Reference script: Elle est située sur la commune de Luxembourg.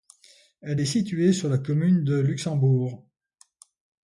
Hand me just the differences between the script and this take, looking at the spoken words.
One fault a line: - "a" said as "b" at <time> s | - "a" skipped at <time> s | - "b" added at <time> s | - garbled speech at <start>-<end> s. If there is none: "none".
none